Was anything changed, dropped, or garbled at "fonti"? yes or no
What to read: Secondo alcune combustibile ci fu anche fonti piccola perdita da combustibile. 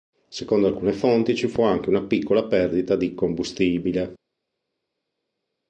yes